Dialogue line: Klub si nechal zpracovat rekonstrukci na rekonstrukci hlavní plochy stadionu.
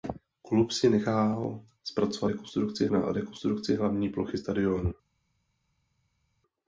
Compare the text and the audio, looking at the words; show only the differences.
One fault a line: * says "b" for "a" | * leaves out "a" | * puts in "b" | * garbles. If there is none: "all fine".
all fine